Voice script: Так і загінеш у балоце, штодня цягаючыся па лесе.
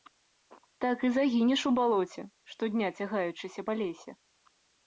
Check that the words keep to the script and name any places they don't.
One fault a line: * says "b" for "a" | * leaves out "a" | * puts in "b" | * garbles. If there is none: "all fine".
all fine